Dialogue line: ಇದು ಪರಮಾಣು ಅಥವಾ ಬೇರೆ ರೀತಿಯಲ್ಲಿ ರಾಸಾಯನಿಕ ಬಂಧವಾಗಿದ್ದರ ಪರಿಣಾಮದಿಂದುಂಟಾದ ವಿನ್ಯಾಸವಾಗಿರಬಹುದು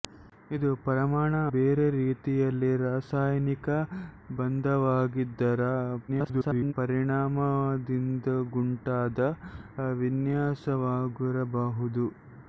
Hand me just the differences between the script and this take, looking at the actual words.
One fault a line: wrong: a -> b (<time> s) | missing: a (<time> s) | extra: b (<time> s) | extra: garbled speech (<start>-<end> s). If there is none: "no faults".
missing: ಅಥವಾ (1.4 s)
extra: garbled speech (6.1-6.7 s)